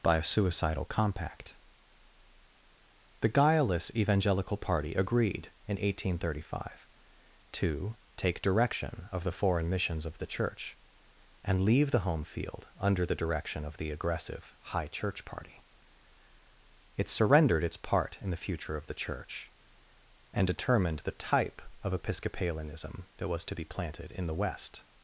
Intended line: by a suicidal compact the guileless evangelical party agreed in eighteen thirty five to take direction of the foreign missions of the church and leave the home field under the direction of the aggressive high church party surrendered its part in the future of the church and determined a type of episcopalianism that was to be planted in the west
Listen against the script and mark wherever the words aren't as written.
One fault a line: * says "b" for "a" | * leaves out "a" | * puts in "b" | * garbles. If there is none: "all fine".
* puts in "it"
* says "the" for "a"